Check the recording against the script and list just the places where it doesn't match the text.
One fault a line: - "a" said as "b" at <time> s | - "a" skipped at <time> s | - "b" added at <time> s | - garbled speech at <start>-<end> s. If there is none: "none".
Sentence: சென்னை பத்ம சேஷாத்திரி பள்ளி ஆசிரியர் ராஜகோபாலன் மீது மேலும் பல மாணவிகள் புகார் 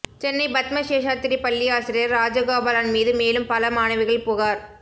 none